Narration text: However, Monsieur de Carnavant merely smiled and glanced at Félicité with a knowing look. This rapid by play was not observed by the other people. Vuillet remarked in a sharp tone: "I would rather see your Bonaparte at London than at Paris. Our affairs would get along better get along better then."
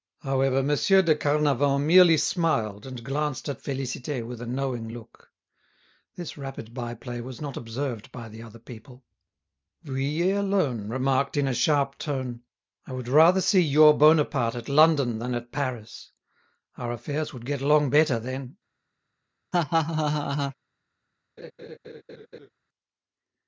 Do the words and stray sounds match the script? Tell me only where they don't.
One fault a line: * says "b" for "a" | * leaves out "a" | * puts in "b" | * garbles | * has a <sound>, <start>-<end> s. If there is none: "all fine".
* puts in "alone"
* leaves out "get along better"
* has a laugh, 19.5-20.5 s
* has a laugh, 21.4-22.5 s